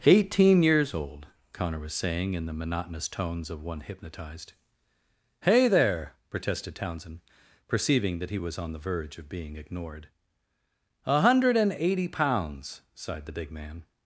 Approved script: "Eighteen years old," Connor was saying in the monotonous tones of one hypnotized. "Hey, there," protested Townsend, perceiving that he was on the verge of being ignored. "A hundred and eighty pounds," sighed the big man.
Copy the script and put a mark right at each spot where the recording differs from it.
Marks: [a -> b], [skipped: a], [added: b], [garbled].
"Eighteen years old," Connor was saying in the monotonous tones of one hypnotized. "Hey, there," protested Townsend, perceiving that he was on the verge of being ignored. "A hundred and eighty pounds," sighed the big man.